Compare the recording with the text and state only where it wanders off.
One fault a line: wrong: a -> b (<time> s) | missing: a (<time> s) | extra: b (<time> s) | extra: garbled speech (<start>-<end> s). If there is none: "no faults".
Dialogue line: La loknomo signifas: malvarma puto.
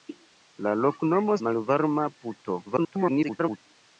missing: signifas (1.4 s)
extra: garbled speech (2.7-3.6 s)